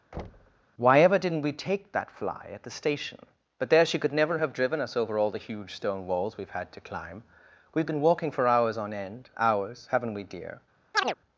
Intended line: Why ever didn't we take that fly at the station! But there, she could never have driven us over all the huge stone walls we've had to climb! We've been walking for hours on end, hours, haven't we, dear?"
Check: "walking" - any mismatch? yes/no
no